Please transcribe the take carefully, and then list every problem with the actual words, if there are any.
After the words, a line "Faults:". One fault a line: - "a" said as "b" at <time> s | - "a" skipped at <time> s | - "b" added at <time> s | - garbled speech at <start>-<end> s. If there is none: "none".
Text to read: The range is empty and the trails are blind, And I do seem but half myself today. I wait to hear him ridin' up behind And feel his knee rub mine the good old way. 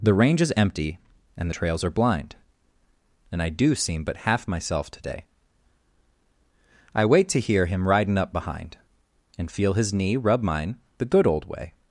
The range is empty and the trails are blind, And I do seem but half myself today. I wait to hear him ridin' up behind And feel his knee rub mine the good old way.
Faults:
none